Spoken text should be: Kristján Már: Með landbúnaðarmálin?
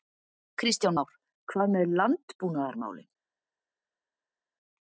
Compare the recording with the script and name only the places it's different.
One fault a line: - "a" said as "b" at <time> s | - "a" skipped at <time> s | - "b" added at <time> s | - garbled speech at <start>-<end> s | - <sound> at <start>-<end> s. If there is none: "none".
- "Hvað" added at 1.5 s